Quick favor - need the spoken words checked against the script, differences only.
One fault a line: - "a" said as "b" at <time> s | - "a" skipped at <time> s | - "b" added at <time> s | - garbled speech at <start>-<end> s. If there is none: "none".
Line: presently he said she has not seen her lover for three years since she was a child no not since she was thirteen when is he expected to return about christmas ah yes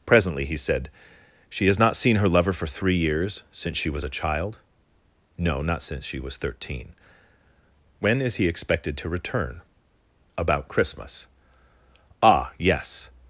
none